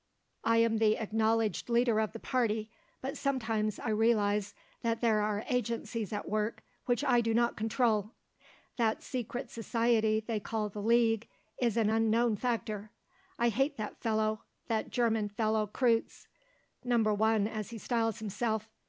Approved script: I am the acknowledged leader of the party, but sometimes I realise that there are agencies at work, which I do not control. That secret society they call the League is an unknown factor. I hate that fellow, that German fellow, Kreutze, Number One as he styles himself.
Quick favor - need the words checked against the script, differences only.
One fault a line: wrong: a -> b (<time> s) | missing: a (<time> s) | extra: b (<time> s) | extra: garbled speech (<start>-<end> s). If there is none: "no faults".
no faults